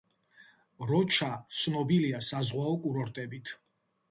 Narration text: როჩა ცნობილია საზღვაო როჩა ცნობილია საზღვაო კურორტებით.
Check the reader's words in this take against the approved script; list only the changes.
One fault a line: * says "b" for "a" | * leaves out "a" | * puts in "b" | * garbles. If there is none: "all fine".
* leaves out "როჩა ცნობილია საზღვაო"